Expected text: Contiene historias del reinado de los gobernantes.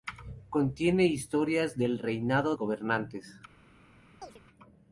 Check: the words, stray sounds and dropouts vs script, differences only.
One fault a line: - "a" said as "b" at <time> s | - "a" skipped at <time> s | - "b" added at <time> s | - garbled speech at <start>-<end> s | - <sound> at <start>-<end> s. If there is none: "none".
- "de los" skipped at 2.5 s
- chirp at 4.2-4.4 s